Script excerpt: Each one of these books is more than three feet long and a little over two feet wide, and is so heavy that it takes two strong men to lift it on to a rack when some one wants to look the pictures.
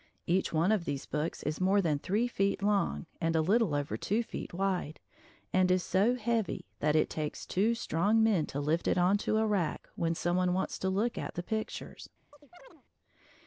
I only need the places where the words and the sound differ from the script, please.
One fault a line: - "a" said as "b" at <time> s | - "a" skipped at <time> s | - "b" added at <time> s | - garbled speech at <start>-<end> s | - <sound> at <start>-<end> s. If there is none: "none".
- "at" added at 11.2 s
- chirp at 12.3-12.8 s